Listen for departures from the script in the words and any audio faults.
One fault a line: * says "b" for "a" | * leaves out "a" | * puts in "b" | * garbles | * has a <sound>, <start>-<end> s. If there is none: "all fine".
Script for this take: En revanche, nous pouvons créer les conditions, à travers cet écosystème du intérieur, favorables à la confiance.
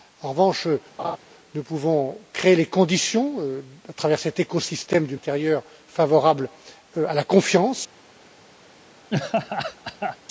* has a laugh, 1.0-1.2 s
* has a laugh, 9.1-10.2 s